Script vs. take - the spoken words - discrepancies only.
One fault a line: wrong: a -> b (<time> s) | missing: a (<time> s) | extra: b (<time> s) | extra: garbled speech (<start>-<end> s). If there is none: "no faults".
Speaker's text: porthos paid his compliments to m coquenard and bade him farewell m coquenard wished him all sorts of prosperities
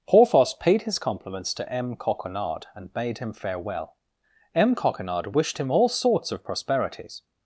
no faults